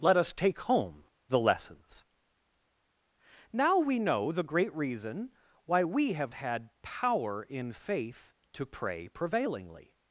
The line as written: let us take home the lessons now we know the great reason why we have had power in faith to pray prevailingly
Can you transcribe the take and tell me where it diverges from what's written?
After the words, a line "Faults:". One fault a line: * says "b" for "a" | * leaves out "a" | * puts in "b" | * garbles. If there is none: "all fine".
let us take home the lessons now we know the great reason why we have had power in faith to pray prevailingly
Faults:
all fine